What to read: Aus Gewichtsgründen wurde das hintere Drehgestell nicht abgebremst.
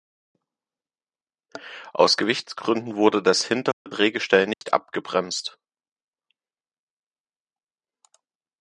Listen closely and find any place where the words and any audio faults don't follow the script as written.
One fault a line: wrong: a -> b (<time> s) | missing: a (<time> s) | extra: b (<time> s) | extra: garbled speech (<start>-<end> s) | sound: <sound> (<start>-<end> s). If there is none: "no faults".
sound: dropout (3.7-3.9 s)
sound: dropout (4.5-4.6 s)